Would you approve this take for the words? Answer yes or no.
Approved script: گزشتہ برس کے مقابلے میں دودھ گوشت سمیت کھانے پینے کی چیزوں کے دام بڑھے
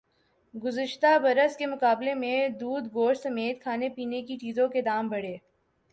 yes